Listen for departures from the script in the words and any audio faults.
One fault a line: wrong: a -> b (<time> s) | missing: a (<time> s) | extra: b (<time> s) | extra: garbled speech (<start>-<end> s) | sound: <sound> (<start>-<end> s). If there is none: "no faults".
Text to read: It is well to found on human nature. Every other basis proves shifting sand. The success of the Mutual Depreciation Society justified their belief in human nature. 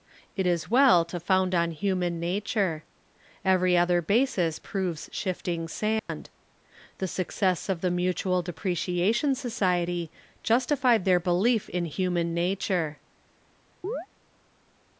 sound: dropout (6.0-6.1 s)
sound: chirp (13.8-14.1 s)